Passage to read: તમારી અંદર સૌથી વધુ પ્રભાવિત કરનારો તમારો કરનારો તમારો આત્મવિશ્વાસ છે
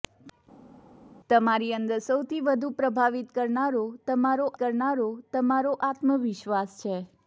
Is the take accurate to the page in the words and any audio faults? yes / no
yes